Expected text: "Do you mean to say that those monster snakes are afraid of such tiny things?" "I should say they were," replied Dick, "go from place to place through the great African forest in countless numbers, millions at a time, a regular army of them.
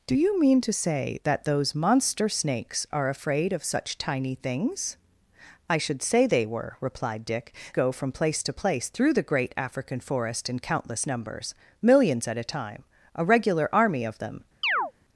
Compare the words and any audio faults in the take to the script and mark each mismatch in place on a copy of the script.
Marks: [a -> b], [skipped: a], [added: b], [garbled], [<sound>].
"Do you mean to say that those monster snakes are afraid of such tiny things?" "I should say they were," replied Dick, "go from place to place through the great African forest in countless numbers, millions at a time, a regular army of them. [chirp]